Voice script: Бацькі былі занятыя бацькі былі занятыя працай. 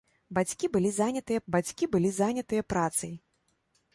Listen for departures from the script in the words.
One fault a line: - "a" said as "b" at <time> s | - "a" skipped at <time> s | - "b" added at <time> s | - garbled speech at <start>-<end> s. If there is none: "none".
none